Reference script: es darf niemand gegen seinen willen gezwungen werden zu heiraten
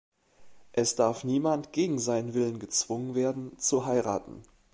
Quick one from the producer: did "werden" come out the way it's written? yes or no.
yes